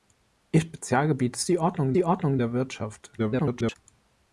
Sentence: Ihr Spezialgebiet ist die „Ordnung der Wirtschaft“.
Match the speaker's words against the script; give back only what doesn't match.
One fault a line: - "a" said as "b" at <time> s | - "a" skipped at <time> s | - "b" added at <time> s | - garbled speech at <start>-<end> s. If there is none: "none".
- "die Ordnung" added at 1.9 s
- garbled speech at 3.2-3.8 s